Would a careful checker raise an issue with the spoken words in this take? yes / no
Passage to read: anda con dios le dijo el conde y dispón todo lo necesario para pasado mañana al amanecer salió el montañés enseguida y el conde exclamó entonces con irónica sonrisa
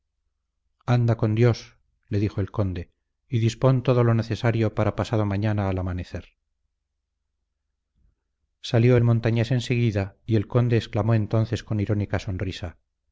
no